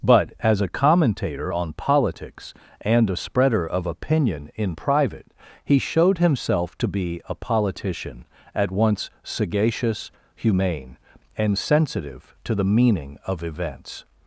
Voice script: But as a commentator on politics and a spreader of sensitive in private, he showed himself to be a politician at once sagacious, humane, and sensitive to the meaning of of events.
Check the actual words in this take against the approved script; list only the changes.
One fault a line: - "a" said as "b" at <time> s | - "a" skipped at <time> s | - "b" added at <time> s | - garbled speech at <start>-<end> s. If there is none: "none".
- "sensitive" said as "opinion" at 3.8 s
- "of" skipped at 13.4 s